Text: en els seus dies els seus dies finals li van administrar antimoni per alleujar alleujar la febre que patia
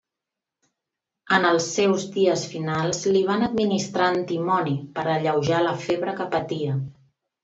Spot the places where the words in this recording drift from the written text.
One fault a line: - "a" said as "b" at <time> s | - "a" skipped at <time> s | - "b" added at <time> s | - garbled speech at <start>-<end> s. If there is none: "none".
- "els seus dies" skipped at 2.4 s
- "alleujar" skipped at 5.6 s